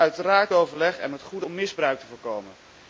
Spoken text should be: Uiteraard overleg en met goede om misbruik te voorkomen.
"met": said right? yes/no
yes